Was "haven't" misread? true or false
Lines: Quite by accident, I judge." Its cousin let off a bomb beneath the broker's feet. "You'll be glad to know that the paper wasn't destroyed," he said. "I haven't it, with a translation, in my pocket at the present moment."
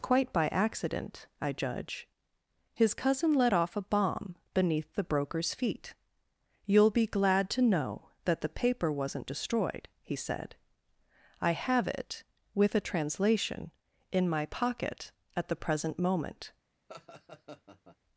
true